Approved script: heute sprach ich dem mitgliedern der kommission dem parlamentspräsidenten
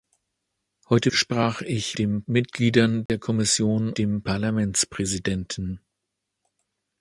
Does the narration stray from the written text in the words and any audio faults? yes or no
yes